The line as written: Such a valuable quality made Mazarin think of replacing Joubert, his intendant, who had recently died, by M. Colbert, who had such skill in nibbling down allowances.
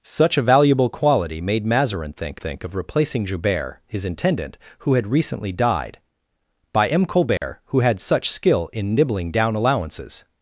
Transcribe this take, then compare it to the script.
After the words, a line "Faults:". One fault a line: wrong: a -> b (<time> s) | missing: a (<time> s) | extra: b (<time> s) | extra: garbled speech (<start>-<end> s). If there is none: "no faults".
Such a valuable quality made Mazarin think think of replacing Joubert, his intendant, who had recently died, by M. Colbert, who had such skill in nibbling down allowances.
Faults:
extra: think (2.4 s)